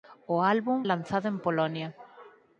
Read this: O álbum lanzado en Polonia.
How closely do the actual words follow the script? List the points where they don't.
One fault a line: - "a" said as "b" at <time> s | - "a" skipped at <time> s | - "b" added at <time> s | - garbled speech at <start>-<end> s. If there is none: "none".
none